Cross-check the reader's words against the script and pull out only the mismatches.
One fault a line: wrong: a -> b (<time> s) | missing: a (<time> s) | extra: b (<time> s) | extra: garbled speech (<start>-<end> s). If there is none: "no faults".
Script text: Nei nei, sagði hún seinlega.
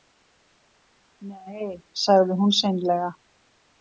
missing: nei (1.7 s)